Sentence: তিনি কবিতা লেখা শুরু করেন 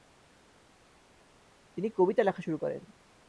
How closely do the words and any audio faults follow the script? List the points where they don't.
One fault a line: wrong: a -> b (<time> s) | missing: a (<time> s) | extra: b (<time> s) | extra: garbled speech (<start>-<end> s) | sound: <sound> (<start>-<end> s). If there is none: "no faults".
no faults